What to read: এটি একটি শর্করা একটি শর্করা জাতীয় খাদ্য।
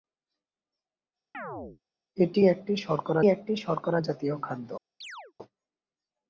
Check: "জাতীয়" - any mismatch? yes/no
no